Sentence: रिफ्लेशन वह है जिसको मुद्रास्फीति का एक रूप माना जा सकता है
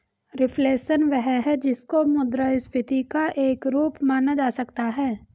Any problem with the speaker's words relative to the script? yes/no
no